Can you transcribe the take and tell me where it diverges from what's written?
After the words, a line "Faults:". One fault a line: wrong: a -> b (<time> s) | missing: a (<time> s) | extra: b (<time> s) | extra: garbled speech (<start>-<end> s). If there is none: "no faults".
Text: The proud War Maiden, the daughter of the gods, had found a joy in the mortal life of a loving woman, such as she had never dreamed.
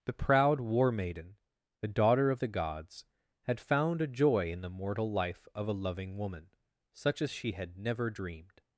The proud War Maiden, the daughter of the gods, had found a joy in the mortal life of a loving woman, such as she had never dreamed.
Faults:
no faults